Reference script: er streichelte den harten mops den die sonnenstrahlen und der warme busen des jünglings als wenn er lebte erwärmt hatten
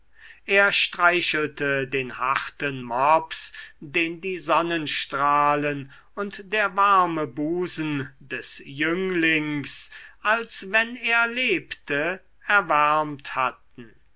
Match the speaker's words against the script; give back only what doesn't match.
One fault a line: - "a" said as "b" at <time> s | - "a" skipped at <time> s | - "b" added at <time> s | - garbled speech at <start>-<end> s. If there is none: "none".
none